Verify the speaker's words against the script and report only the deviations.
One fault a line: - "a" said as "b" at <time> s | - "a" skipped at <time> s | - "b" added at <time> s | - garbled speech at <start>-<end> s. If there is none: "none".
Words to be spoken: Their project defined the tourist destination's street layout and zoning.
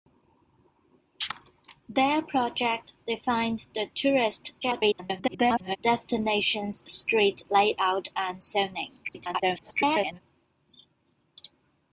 - garbled speech at 4.6-5.8 s
- garbled speech at 9.0-10.2 s